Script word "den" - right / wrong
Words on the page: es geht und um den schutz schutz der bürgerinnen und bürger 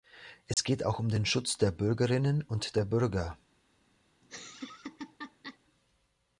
right